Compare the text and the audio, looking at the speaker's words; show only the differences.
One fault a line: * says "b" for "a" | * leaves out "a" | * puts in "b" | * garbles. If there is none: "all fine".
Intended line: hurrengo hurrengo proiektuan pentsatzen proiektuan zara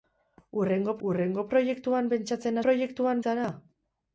all fine